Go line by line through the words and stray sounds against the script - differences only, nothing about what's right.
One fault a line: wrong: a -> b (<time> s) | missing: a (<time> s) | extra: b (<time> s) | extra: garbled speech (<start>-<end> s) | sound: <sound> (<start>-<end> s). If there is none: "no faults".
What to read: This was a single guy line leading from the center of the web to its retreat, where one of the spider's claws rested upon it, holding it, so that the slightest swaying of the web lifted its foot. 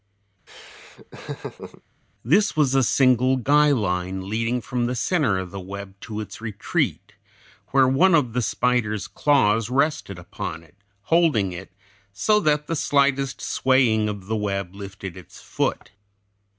sound: laugh (0.5-1.8 s)